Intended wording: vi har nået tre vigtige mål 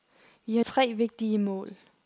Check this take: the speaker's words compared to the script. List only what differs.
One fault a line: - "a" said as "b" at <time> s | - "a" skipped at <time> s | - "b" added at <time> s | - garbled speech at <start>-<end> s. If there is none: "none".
- "nået" skipped at 0.6 s